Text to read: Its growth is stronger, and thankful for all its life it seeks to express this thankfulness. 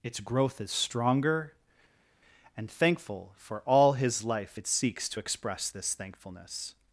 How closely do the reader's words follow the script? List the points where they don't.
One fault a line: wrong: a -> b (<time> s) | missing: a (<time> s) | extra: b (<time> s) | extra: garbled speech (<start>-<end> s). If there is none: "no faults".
wrong: its -> his (3.9 s)